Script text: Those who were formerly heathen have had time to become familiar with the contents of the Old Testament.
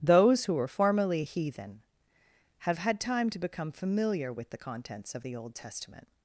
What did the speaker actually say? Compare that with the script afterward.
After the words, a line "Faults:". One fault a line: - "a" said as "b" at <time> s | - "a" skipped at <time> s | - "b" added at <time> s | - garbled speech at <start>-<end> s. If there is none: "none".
Those who were formerly heathen have had time to become familiar with the contents of the Old Testament.
Faults:
none